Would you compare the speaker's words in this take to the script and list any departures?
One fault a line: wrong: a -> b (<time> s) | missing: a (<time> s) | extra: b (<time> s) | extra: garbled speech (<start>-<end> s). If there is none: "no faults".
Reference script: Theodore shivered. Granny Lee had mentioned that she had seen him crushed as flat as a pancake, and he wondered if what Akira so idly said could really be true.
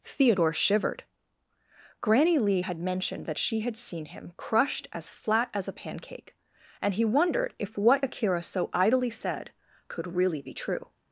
no faults